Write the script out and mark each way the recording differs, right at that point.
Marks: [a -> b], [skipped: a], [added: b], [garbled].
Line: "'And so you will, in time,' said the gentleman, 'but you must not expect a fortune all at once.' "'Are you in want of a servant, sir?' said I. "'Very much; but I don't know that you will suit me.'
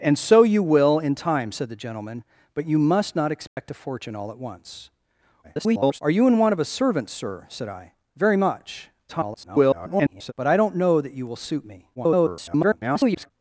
"'And so you will, in time,' said the gentleman, 'but you must not expect a fortune all at once.' [garbled] "'Are you in want of a servant, sir?' said I. "'Very much; [garbled] but I don't know that you will suit me.' [garbled]